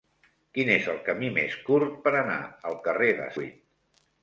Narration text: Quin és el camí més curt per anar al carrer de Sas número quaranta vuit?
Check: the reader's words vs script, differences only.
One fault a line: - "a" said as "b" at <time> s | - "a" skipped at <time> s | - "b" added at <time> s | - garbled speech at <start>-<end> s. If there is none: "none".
- "Sas número quaranta" skipped at 3.3 s